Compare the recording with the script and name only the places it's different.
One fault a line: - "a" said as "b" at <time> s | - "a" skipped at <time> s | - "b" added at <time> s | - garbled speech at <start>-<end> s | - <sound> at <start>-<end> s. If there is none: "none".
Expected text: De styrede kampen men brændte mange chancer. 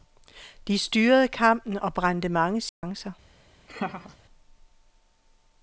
- "men" said as "og" at 1.8 s
- dropout at 2.7-2.8 s
- laugh at 3.7-4.2 s